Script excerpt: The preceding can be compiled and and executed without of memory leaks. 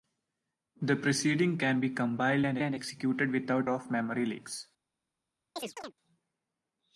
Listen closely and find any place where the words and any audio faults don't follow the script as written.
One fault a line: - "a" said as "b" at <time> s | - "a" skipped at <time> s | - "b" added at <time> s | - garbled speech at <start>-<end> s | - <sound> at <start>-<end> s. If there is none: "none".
- chirp at 5.6-5.9 s